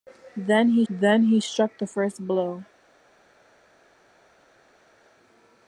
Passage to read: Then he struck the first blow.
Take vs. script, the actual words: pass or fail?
fail